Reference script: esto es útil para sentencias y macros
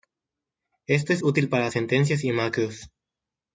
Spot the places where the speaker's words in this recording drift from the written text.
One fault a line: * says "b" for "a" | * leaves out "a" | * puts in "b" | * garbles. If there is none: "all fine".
all fine